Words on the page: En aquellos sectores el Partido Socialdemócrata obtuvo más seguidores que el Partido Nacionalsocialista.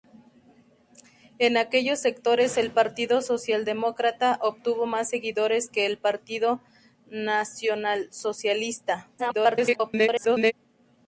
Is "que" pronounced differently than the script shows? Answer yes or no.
no